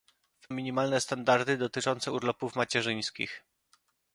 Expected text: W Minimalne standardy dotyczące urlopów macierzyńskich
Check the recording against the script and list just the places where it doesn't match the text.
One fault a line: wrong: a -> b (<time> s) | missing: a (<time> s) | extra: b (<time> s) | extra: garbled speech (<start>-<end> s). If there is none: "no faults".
no faults